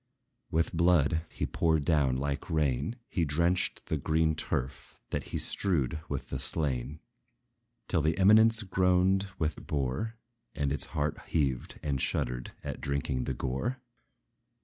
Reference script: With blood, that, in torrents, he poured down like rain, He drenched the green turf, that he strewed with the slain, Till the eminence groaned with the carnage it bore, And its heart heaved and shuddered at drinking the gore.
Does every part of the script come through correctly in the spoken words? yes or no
no